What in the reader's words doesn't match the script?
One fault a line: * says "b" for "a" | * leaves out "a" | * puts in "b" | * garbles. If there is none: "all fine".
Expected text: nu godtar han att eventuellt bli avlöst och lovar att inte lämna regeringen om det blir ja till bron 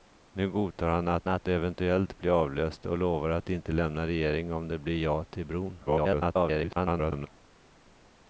* puts in "att"
* garbles